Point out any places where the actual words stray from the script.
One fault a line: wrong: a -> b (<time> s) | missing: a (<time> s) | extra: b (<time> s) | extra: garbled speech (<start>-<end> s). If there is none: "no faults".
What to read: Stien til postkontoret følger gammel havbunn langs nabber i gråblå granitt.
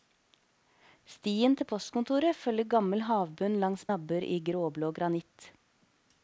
no faults